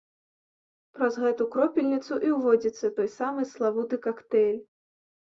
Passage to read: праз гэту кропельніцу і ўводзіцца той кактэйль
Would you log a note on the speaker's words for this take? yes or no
yes